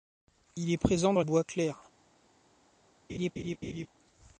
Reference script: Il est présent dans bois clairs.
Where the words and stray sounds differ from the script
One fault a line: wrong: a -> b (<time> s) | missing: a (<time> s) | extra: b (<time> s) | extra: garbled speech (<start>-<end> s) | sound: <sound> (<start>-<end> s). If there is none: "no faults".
sound: laugh (3.1-3.9 s)